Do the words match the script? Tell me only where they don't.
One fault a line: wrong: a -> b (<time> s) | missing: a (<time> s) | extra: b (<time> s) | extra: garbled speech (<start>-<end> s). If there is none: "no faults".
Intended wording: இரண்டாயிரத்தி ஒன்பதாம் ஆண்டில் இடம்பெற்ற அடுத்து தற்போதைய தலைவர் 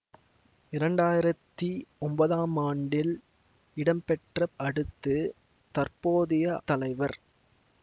no faults